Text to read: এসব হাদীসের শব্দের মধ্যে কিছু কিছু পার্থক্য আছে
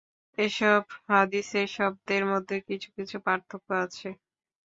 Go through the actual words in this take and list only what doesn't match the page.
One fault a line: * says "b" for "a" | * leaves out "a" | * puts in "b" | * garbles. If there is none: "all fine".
all fine